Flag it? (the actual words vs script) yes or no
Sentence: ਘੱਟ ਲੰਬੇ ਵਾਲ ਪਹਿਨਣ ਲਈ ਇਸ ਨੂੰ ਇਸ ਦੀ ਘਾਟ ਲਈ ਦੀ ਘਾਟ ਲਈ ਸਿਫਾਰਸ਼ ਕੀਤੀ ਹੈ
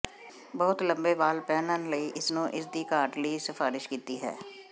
yes